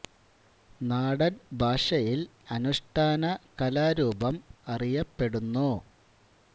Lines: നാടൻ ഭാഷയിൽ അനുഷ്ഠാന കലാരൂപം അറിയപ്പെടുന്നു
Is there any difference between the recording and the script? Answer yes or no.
no